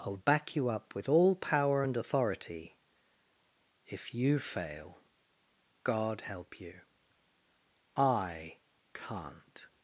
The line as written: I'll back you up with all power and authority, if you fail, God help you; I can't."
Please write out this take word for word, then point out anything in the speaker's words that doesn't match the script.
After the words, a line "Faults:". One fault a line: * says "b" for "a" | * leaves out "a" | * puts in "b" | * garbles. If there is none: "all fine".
I'll back you up with all power and authority, if you fail, God help you; I can't."
Faults:
all fine